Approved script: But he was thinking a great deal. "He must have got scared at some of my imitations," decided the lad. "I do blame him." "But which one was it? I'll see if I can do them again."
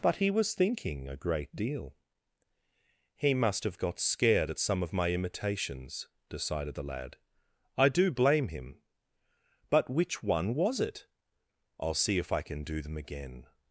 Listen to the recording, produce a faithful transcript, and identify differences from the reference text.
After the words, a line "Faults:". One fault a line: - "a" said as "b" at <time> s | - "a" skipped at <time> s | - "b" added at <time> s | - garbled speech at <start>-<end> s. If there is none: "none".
But he was thinking a great deal. "He must have got scared at some of my imitations," decided the lad. "I do blame him." "But which one was it? I'll see if I can do them again."
Faults:
none